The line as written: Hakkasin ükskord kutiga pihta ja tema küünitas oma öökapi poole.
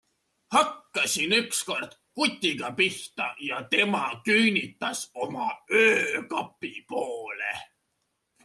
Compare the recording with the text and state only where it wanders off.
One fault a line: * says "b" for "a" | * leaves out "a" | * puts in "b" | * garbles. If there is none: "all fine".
all fine